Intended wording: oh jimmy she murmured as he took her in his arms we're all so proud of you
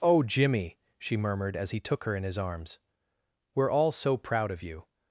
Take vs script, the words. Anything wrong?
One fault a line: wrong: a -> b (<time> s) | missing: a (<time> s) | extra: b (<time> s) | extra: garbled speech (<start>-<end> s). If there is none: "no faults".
no faults